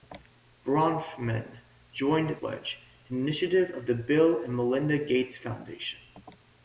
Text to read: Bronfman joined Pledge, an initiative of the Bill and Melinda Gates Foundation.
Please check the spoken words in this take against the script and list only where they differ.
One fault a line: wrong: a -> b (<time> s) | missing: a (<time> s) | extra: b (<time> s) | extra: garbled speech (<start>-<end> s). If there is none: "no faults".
no faults